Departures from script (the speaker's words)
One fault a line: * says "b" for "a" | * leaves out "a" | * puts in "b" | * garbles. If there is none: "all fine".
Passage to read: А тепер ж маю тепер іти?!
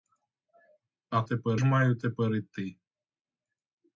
all fine